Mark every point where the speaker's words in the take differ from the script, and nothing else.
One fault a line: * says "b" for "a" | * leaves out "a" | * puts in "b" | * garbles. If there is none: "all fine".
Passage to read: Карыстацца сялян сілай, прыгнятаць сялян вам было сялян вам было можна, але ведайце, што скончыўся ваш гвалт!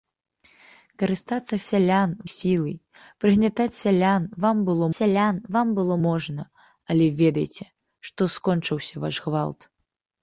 all fine